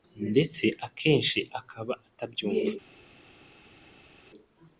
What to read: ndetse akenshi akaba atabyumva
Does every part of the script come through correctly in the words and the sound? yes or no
yes